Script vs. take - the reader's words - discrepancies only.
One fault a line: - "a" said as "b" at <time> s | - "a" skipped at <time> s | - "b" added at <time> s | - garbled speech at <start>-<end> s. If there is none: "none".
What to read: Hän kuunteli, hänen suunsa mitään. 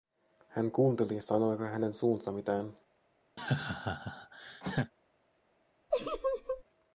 - "sanoiko" added at 1.2 s